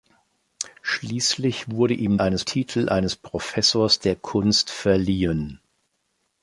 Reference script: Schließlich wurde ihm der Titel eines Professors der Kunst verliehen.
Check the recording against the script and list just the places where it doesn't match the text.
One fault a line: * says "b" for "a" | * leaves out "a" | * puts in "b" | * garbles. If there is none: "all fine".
* says "eines" for "der"